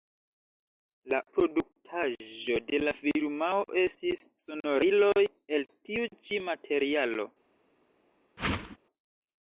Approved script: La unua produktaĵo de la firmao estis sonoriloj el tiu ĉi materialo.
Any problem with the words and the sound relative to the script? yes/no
yes